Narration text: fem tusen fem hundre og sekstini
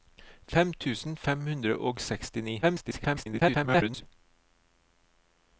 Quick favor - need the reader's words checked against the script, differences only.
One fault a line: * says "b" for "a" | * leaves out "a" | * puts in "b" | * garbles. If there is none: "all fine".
* garbles